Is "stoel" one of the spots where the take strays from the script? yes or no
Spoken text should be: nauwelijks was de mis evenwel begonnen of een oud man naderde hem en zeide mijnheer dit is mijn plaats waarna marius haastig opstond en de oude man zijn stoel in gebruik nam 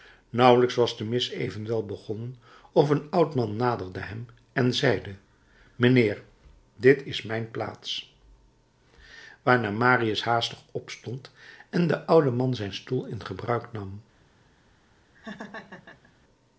no